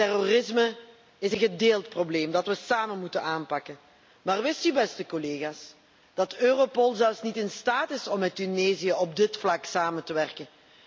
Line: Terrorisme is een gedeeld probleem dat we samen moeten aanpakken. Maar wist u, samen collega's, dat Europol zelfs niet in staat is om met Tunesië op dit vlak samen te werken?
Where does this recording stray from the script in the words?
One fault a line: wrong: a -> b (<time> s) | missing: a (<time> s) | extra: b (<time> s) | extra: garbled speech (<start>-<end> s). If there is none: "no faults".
wrong: samen -> beste (4.7 s)